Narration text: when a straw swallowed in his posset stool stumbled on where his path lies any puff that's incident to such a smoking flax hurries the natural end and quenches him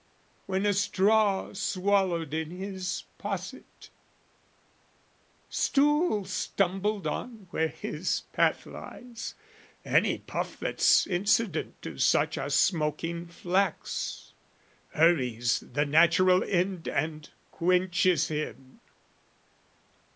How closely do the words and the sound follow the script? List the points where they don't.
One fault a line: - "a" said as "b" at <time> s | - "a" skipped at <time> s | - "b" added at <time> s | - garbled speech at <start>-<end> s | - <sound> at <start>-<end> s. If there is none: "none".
none